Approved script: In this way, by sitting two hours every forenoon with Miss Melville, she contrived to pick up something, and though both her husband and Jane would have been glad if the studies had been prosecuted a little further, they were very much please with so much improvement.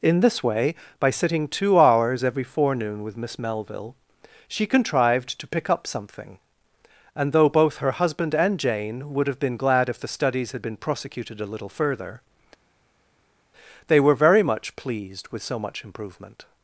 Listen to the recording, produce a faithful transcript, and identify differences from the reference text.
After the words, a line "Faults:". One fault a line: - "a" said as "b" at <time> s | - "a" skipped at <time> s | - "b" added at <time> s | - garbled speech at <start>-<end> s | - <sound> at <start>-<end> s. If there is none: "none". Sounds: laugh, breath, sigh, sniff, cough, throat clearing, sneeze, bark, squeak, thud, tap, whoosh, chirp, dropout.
In this way, by sitting two hours every forenoon with Miss Melville, she contrived to pick up something, and though both her husband and Jane would have been glad if the studies had been prosecuted a little further, they were very much pleased with so much improvement.
Faults:
- "please" said as "pleased" at 14.8 s